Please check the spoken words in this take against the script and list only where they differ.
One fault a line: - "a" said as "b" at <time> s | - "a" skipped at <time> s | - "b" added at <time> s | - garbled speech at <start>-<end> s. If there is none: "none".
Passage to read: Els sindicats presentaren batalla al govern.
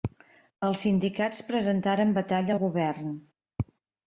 none